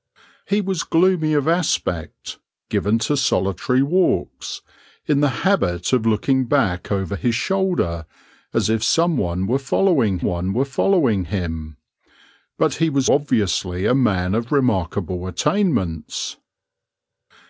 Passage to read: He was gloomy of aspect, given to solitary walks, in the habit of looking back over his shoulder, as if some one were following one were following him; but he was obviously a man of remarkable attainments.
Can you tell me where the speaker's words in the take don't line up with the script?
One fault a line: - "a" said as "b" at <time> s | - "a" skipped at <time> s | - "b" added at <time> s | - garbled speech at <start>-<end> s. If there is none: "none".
none